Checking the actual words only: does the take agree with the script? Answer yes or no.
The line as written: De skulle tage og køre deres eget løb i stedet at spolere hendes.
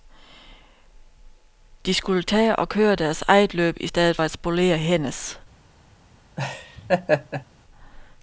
yes